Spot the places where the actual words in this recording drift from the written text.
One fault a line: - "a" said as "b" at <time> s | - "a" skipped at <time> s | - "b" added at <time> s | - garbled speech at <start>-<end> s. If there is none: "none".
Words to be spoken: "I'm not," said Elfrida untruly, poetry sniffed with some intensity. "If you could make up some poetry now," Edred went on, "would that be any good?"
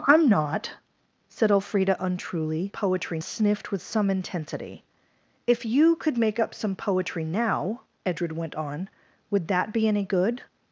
none